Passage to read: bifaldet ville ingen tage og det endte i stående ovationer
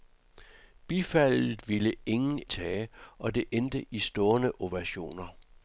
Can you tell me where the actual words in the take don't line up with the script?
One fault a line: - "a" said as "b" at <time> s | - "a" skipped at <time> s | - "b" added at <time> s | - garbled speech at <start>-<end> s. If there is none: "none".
none